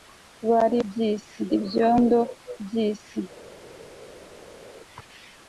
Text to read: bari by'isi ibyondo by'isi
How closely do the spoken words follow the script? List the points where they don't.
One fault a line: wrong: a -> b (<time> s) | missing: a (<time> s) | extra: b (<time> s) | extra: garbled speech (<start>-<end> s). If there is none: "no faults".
no faults